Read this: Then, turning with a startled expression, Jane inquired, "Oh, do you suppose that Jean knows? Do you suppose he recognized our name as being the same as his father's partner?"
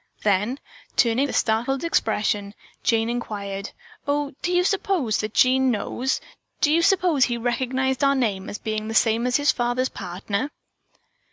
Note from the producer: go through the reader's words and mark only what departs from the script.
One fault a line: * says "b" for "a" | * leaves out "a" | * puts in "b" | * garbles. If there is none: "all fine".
* leaves out "with"